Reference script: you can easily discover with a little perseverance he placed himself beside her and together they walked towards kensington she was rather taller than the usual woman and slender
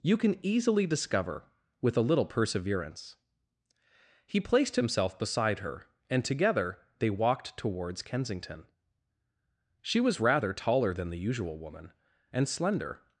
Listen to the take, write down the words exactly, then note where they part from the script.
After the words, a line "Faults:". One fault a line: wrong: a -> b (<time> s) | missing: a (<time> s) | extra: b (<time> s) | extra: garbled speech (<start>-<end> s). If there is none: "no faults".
you can easily discover with a little perseverance he placed himself beside her and together they walked towards kensington she was rather taller than the usual woman and slender
Faults:
no faults